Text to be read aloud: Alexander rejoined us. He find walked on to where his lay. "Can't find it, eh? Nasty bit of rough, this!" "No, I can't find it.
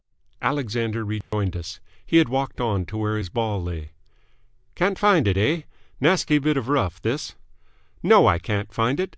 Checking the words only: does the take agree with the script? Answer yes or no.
no